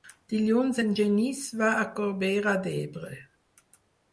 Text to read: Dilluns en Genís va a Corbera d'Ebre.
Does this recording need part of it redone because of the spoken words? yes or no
no